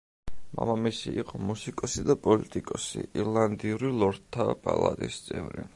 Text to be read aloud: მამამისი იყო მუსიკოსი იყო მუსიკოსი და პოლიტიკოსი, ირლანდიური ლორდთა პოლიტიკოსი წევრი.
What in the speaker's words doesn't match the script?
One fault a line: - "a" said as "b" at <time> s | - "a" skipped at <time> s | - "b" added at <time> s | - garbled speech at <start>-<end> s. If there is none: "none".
- "იყო მუსიკოსი" skipped at 2.0 s
- "პოლიტიკოსი" said as "პალატის" at 4.7 s